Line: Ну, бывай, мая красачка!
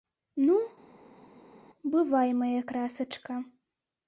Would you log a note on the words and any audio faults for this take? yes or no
no